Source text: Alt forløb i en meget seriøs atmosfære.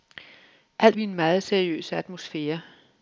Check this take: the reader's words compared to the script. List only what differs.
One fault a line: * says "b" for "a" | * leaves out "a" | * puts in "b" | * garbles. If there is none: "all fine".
* leaves out "forløb"